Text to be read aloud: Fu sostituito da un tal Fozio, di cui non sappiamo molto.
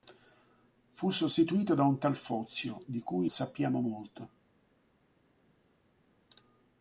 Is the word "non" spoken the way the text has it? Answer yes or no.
no